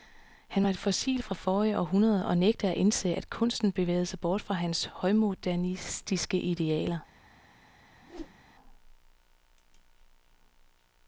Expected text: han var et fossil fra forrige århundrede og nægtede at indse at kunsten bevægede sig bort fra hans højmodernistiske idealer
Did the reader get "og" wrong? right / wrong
right